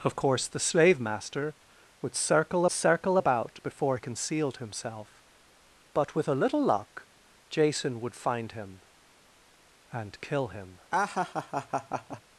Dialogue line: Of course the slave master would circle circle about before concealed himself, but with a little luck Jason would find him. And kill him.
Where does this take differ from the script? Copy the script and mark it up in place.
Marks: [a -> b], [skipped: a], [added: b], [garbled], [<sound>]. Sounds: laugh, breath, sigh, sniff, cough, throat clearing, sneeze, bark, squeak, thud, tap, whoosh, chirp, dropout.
Of course the slave master would circle circle about before concealed himself, but with a little luck Jason would find him. And kill him. [laugh]